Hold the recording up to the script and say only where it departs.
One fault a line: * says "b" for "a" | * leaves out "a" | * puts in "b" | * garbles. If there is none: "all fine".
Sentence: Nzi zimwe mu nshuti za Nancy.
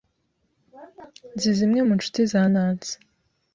all fine